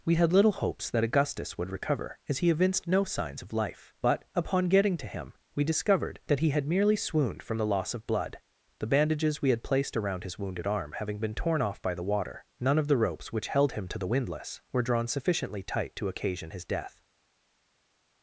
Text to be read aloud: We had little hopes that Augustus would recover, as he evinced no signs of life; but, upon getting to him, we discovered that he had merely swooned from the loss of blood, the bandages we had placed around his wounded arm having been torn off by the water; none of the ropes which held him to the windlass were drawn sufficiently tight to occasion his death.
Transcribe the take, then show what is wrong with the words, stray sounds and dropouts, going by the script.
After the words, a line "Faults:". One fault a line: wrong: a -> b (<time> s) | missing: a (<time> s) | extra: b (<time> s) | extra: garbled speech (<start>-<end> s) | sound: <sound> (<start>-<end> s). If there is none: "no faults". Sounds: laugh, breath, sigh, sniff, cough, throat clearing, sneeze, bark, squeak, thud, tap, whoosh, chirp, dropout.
We had little hopes that Augustus would recover, as he evinced no signs of life; but, upon getting to him, we discovered that he had merely swooned from the loss of blood, the bandages we had placed around his wounded arm having been torn off by the water; none of the ropes which held him to the windlass were drawn sufficiently tight to occasion his death.
Faults:
no faults